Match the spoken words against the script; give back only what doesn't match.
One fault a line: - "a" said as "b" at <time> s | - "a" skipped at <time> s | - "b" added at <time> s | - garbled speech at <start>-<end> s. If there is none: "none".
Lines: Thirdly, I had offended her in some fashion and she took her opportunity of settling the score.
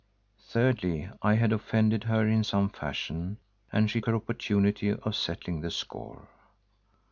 - "took" skipped at 4.0 s